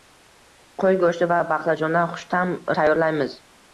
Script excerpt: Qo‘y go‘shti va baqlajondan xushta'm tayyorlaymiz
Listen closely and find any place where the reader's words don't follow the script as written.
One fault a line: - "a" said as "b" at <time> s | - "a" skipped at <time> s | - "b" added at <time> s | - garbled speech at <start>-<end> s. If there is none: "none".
none